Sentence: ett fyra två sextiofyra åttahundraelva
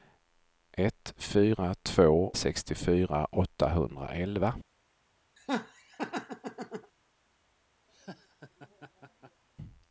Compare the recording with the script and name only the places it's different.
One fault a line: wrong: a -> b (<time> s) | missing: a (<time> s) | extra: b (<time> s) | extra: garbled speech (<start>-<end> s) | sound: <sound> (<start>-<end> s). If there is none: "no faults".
sound: laugh (5.4-6.9 s)
sound: laugh (7.9-9.4 s)